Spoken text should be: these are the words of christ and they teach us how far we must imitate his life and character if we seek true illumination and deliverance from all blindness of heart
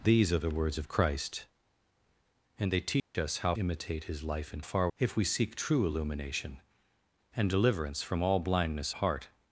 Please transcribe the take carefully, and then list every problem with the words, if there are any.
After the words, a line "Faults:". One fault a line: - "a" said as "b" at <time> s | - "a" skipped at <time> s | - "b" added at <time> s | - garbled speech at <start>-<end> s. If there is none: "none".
these are the words of christ and they teach us how imitate his life and far if we seek true illumination and deliverance from all blindness heart
Faults:
- "far we must" skipped at 3.5 s
- "character" said as "far" at 4.6 s
- "of" skipped at 8.9 s